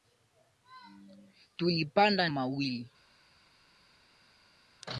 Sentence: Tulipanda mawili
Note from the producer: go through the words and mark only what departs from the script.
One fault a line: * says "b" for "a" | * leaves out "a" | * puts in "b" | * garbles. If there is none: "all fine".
all fine